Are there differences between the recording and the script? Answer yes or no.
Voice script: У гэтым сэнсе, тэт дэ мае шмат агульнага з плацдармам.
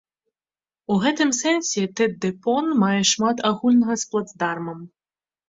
yes